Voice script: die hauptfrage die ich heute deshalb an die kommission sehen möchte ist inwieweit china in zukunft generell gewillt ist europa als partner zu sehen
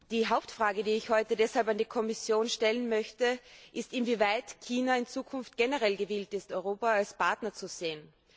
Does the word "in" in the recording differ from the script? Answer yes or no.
no